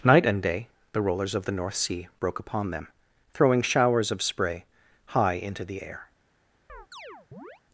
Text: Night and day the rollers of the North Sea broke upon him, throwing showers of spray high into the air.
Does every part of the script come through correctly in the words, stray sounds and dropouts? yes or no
no